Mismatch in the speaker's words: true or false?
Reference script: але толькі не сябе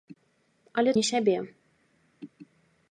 true